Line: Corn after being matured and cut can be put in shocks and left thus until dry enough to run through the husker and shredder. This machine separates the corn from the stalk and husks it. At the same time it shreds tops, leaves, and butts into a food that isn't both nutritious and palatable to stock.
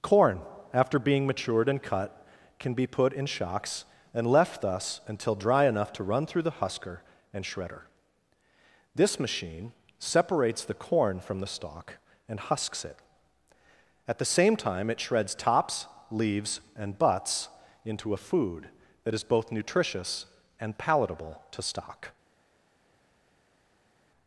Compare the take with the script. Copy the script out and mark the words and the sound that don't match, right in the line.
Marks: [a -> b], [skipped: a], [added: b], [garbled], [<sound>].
Corn after being matured and cut can be put in shocks and left thus until dry enough to run through the husker and shredder. This machine separates the corn from the stalk and husks it. At the same time it shreds tops, leaves, and butts into a food that [isn't -> is] both nutritious and palatable to stock.